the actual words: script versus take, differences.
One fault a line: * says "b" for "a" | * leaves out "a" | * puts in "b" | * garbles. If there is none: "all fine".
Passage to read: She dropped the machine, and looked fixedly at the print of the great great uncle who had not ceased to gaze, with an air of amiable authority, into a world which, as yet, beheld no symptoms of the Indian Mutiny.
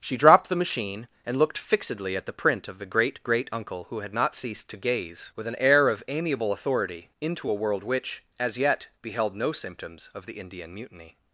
all fine